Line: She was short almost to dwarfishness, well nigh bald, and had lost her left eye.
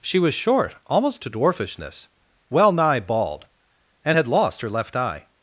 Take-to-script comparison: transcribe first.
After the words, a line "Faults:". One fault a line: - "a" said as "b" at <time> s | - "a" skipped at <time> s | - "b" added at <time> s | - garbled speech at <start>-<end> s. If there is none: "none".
She was short almost to dwarfishness, well nigh bald, and had lost her left eye.
Faults:
none